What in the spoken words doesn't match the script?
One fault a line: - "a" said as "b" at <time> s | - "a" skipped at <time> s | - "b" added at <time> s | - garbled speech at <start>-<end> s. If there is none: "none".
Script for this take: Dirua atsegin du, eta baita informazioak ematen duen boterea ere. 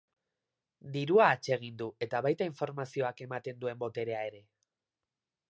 none